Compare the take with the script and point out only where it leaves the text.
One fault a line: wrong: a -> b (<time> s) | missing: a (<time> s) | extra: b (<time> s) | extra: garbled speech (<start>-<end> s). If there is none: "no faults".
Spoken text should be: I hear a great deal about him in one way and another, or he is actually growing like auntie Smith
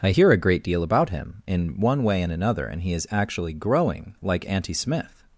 wrong: or -> and (2.7 s)